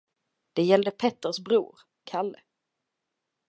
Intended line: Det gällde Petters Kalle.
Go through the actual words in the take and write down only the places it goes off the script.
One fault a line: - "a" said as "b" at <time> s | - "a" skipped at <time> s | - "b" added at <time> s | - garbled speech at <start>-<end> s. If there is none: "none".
- "bror" added at 1.4 s